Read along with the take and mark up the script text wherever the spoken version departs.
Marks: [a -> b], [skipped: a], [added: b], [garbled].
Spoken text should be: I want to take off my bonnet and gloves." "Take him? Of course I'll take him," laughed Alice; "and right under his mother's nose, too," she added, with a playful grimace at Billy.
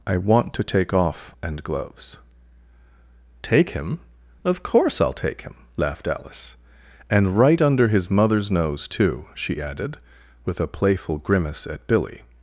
I want to take off [skipped: my bonnet] and gloves." "Take him? Of course I'll take him," laughed Alice; "and right under his mother's nose, too," she added, with a playful grimace at Billy.